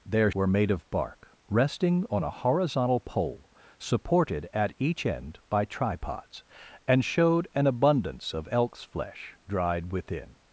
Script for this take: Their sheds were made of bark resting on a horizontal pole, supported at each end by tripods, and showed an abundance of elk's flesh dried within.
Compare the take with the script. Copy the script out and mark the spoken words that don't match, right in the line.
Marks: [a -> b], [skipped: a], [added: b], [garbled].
Their [skipped: sheds] were made of bark resting on a horizontal pole, supported at each end by tripods, and showed an abundance of elk's flesh dried within.